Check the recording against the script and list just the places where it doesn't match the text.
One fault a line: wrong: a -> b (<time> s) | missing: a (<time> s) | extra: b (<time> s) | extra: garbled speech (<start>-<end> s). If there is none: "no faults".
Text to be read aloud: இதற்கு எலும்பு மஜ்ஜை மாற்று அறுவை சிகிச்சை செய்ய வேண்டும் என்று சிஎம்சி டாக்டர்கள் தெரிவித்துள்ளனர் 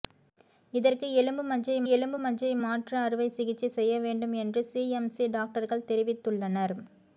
extra: எலும்பு மஜ்ஜை (1.9 s)